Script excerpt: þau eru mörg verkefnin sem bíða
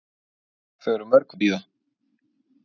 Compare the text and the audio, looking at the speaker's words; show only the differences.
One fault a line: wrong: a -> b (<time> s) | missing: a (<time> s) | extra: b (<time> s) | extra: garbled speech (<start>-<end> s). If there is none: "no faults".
missing: verkefnin (1.4 s)